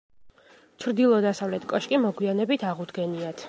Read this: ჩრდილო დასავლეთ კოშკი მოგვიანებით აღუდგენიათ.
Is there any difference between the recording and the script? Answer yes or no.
no